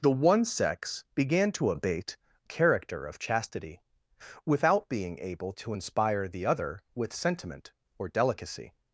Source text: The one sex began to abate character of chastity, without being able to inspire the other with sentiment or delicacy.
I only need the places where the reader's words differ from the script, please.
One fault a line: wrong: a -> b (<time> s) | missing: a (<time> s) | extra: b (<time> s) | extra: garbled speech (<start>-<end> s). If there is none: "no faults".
no faults